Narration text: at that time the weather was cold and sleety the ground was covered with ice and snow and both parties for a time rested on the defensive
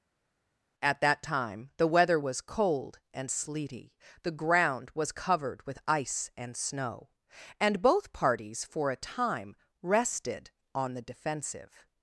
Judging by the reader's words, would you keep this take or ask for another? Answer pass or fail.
pass